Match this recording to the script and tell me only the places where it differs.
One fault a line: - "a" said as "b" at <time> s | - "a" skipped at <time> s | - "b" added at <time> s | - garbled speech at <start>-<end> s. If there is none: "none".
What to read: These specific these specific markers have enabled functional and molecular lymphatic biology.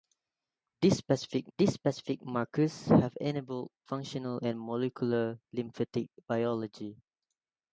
none